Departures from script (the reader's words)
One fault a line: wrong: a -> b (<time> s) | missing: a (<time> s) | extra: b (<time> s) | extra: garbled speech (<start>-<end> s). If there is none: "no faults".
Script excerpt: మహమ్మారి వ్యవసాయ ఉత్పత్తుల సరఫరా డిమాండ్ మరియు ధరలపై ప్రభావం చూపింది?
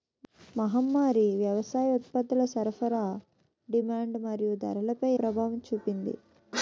no faults